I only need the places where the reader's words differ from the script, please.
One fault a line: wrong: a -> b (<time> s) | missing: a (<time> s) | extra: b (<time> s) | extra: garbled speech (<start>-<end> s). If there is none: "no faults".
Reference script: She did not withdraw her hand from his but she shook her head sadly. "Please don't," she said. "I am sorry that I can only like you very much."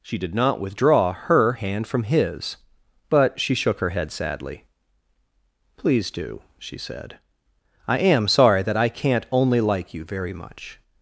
wrong: don't -> do (6.1 s)
wrong: can -> can't (8.9 s)